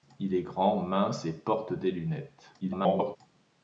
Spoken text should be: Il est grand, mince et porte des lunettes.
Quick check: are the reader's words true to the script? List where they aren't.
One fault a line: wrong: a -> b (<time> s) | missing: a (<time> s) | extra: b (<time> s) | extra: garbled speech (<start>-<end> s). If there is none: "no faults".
extra: garbled speech (2.6-3.2 s)